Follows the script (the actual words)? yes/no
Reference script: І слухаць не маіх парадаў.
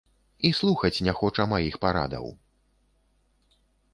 no